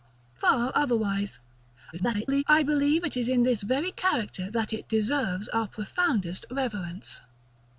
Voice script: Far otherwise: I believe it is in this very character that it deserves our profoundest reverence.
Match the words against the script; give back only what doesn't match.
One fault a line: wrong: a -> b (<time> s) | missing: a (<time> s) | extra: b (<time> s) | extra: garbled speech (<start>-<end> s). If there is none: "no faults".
extra: garbled speech (1.9-2.4 s)